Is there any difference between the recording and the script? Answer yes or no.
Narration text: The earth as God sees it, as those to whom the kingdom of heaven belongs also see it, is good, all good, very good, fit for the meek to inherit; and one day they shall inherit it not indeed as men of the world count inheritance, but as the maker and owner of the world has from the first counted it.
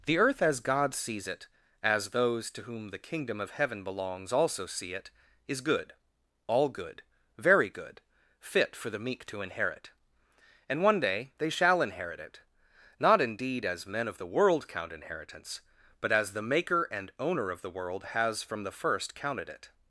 no